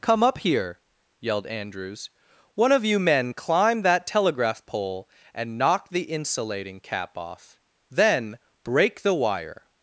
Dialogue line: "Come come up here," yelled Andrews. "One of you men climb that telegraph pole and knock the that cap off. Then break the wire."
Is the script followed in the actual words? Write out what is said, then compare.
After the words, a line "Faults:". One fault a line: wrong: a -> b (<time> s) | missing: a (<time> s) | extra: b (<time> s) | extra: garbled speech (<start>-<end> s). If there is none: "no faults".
"Come up here," yelled Andrews. "One of you men climb that telegraph pole and knock the insulating cap off. Then break the wire."
Faults:
missing: come (0.2 s)
wrong: that -> insulating (6.0 s)